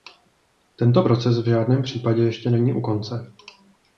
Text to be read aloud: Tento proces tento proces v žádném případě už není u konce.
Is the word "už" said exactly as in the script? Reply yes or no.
no